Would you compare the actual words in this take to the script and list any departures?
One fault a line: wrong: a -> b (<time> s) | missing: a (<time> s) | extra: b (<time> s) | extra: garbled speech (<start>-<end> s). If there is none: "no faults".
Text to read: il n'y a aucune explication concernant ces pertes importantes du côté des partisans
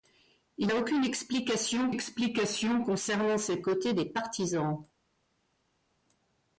missing: n'y (0.7 s)
extra: explication (1.9 s)
missing: pertes importantes du (3.6 s)